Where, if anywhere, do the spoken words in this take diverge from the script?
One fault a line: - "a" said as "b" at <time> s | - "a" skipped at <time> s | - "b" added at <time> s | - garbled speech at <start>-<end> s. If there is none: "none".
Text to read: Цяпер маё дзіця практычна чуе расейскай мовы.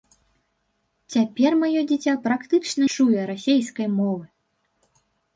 none